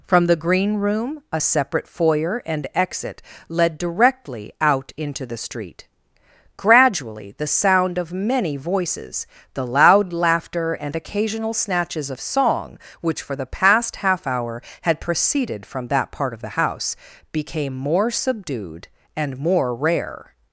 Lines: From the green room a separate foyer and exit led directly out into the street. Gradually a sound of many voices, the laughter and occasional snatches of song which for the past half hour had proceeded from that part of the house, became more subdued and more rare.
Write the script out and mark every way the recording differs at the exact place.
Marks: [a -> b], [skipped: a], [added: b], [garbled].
From the green room a separate foyer and exit led directly out into the street. Gradually [a -> the] sound of many voices, the [added: loud] laughter and occasional snatches of song which for the past half hour had proceeded from that part of the house, became more subdued and more rare.